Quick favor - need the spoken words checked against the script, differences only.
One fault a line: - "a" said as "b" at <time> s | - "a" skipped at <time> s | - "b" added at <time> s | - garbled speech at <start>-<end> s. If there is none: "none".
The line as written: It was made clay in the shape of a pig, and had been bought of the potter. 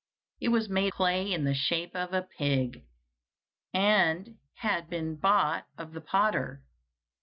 none